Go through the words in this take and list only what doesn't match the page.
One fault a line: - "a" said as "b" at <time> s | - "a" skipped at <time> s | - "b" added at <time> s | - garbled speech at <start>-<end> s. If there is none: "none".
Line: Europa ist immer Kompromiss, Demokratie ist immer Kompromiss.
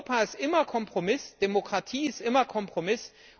none